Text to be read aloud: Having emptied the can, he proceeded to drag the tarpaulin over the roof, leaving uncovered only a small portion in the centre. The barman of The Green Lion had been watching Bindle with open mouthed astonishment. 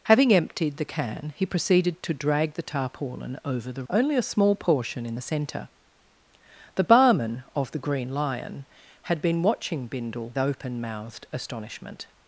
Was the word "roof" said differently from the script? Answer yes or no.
yes